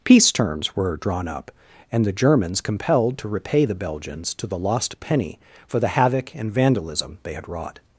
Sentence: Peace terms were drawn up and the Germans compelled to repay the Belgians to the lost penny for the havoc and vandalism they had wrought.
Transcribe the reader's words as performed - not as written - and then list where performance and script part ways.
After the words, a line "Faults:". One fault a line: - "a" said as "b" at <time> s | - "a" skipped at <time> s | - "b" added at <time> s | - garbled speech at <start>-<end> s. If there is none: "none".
Peace terms were drawn up and the Germans compelled to repay the Belgians to the lost penny for the havoc and vandalism they had wrought.
Faults:
none